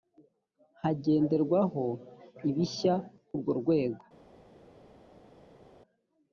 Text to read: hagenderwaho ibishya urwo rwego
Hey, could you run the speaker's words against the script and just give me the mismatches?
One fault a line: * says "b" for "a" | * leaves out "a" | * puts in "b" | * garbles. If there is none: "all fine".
all fine